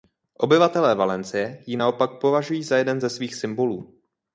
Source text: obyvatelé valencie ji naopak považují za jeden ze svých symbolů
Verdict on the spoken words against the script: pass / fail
pass